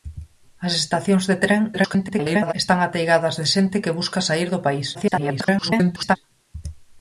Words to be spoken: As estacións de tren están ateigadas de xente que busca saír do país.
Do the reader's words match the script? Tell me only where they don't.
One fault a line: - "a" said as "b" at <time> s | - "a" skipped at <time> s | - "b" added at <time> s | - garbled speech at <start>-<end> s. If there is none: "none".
- garbled speech at 1.7-2.5 s
- garbled speech at 4.9-6.2 s